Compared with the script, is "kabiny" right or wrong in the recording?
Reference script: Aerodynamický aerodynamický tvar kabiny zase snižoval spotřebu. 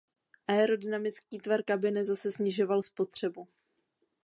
right